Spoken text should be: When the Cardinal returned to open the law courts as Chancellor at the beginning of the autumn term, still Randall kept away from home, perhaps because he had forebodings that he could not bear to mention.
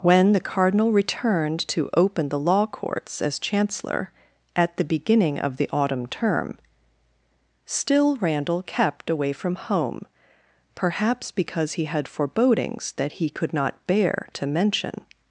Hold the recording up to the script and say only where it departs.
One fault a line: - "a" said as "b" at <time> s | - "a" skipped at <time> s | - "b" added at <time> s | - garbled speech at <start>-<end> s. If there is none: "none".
none